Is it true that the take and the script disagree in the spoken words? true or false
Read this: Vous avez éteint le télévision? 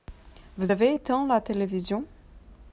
true